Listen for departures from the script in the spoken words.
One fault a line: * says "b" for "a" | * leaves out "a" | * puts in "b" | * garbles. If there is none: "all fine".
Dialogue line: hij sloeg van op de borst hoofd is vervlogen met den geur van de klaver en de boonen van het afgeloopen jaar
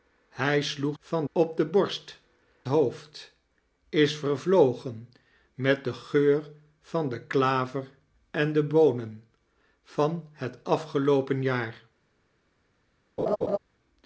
all fine